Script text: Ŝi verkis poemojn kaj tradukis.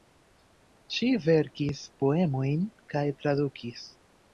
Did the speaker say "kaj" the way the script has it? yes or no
yes